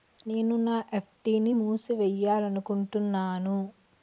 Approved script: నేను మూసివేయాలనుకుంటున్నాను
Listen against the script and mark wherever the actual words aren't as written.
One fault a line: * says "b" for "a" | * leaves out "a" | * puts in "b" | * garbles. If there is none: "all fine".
* puts in "నా ఎఫ్.డి ని"